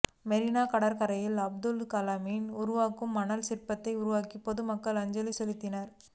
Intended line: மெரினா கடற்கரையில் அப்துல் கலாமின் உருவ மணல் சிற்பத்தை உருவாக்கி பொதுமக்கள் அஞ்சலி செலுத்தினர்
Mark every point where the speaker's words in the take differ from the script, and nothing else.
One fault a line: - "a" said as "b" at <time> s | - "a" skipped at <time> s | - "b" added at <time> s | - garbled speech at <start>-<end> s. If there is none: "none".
none